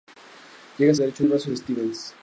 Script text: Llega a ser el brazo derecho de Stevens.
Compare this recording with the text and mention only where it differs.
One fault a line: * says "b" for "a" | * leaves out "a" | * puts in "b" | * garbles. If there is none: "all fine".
* says "derecho" for "ser"
* leaves out "derecho"